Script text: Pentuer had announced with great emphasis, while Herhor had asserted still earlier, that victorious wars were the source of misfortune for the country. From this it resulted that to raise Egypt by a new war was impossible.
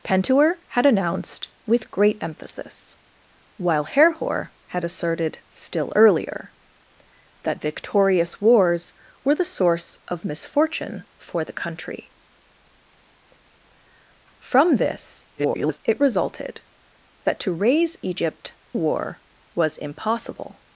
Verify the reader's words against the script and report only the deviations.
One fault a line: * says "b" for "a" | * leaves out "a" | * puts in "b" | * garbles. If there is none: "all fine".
* garbles
* leaves out "by a new"